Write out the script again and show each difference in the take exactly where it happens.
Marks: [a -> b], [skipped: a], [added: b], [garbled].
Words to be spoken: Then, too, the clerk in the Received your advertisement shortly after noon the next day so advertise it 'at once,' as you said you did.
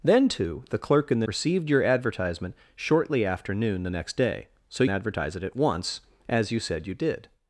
Then, too, the clerk in the Received your advertisement shortly after noon the next day so advertise it 'at once,' as you said you did.